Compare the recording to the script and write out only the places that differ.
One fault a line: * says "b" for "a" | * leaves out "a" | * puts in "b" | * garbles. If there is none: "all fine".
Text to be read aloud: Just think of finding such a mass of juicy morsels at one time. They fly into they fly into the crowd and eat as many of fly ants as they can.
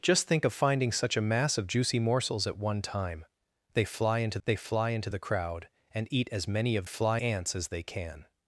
all fine